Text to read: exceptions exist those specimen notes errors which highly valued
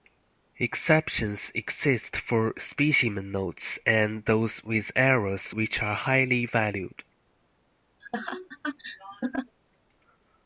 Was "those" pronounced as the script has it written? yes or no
no